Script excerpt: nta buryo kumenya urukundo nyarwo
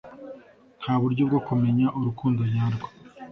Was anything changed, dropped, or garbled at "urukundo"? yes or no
no